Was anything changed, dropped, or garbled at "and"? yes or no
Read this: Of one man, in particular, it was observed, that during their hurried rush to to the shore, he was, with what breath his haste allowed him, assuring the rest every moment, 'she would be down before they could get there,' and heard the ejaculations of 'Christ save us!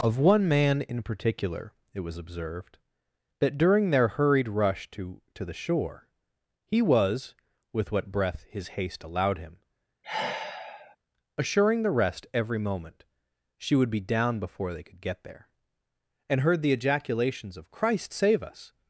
no